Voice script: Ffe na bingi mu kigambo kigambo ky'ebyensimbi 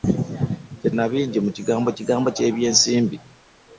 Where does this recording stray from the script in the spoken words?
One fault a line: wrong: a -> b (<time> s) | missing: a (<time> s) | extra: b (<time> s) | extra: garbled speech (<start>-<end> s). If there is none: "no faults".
no faults